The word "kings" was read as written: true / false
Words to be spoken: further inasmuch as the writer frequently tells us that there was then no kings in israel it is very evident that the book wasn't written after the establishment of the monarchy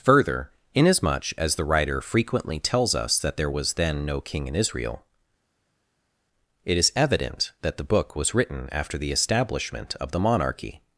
false